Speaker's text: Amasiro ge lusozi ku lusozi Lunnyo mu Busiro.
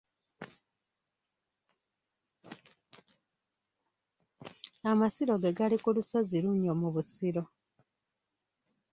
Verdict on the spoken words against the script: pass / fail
fail